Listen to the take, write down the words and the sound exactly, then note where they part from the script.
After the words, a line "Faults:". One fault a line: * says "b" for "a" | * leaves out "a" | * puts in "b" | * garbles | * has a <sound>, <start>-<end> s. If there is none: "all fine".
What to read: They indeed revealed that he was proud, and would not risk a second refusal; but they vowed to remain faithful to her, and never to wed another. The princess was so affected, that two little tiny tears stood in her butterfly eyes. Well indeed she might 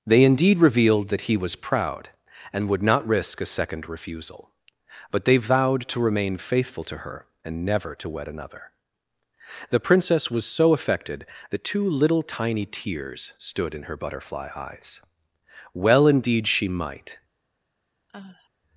They indeed revealed that he was proud, and would not risk a second refusal; but they vowed to remain faithful to her, and never to wed another. The princess was so affected, that two little tiny tears stood in her butterfly eyes. Well indeed she might
Faults:
* has a sigh, 18.1-18.5 s